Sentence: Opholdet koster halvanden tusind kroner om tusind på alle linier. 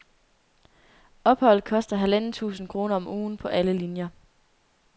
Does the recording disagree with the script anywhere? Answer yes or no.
yes